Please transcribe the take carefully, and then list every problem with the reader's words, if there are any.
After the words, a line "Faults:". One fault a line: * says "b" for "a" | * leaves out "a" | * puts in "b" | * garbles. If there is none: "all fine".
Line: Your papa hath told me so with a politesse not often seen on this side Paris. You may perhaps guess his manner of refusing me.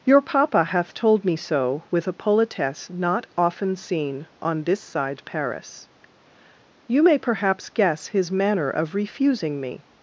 Your papa hath told me so with a politesse not often seen on this side Paris. You may perhaps guess his manner of refusing me.
Faults:
all fine